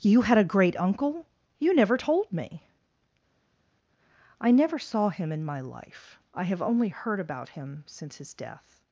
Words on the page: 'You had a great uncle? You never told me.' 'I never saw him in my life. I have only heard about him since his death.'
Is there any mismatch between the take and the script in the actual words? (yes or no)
no